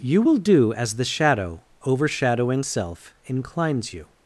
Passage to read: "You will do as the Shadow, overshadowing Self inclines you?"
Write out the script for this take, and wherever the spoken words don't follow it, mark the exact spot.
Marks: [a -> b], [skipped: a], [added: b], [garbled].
"You will do as the Shadow, overshadowing Self inclines you?"